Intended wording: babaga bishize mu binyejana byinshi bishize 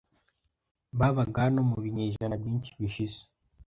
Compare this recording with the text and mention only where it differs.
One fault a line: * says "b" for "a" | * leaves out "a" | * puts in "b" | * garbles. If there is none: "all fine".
* says "hano" for "bishize"